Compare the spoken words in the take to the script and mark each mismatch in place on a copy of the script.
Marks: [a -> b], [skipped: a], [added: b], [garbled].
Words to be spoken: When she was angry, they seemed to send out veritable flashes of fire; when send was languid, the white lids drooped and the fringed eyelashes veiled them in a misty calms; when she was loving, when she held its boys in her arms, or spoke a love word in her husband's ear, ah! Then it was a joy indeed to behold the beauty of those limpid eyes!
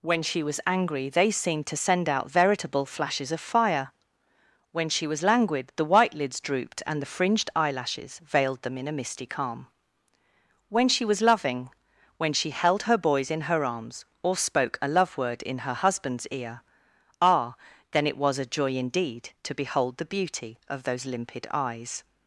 When she was angry, they seemed to send out veritable flashes of fire; when [send -> she] was languid, the white lids drooped and the fringed eyelashes veiled them in a misty [calms; -> calm] when she was loving, when she held [its -> her] boys in her arms, or spoke a love word in her husband's ear, ah! Then it was a joy indeed to behold the beauty of those limpid eyes!